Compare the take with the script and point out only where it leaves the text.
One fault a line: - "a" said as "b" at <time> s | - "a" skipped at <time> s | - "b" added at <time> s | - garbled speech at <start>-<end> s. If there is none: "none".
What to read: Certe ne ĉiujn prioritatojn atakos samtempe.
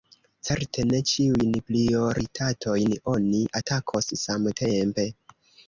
- "oni" added at 3.1 s